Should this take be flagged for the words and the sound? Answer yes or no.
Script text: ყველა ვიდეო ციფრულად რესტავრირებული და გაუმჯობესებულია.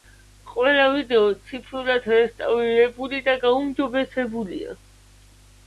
no